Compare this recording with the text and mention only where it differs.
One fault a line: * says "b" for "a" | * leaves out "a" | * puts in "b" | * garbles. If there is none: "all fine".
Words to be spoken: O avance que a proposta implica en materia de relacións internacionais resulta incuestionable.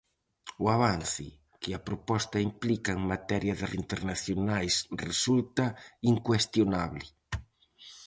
* leaves out "relacións"